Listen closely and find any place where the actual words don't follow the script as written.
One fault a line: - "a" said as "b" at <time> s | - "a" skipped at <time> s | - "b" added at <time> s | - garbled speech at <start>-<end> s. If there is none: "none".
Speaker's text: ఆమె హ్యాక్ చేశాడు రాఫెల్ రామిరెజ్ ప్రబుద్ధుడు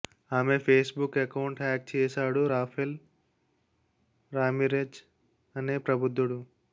- "ఫేస్ బుక్ అకౌంట్" added at 0.6 s
- "అనే" added at 5.5 s